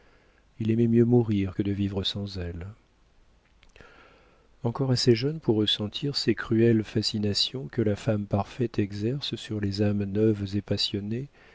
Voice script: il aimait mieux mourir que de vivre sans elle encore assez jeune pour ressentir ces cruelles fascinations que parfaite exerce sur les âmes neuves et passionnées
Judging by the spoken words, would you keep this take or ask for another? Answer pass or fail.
fail